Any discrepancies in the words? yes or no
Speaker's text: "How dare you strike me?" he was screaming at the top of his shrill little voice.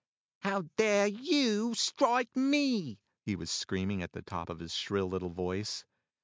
no